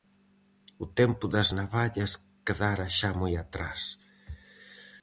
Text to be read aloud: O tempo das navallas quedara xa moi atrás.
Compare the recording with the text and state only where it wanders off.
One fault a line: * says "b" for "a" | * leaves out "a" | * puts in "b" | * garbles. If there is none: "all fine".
all fine